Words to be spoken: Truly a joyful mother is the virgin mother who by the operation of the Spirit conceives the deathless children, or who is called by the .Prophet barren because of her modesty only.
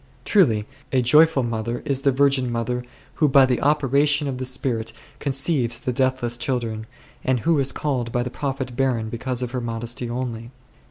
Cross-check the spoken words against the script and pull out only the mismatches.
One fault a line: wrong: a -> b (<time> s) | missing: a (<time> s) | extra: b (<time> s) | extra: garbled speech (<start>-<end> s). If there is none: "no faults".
wrong: or -> and (7.2 s)